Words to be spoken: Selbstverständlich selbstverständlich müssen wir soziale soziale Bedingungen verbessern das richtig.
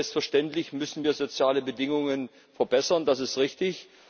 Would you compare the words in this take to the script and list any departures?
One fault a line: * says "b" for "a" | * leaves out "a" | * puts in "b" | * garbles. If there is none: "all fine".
* leaves out "selbstverständlich"
* leaves out "soziale"
* puts in "ist"